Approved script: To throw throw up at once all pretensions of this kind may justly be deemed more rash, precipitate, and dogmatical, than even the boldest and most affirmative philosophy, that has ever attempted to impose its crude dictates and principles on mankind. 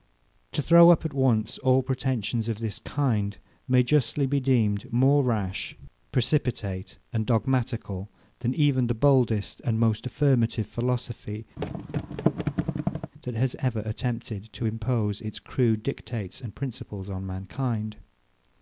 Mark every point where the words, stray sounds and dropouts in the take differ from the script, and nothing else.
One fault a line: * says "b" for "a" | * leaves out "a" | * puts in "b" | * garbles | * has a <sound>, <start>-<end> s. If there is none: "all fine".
* leaves out "throw"
* has a thud, 11.6-13.1 s